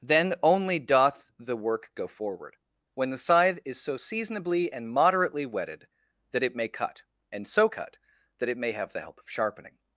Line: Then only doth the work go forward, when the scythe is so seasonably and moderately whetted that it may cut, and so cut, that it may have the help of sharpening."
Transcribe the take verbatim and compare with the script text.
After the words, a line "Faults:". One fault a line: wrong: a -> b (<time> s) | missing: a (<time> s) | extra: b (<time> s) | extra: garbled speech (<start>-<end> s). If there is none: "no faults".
Then only doth the work go forward, when the scythe is so seasonably and moderately whetted that it may cut, and so cut, that it may have the help of sharpening."
Faults:
no faults